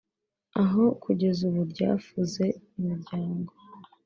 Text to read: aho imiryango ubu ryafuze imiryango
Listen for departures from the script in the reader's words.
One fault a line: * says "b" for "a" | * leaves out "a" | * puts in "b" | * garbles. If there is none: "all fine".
* says "kugeza" for "imiryango"